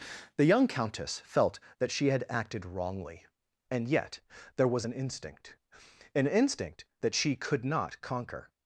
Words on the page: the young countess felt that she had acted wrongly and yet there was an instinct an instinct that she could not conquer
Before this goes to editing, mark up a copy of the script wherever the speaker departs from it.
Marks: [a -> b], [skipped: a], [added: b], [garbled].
the young countess felt that she had acted wrongly and yet there was an instinct an instinct that she could not conquer